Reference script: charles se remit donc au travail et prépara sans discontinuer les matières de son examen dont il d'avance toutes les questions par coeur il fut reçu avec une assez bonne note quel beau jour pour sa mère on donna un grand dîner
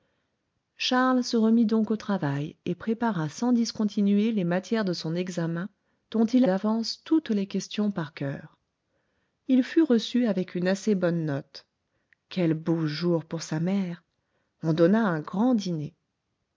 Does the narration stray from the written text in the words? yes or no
no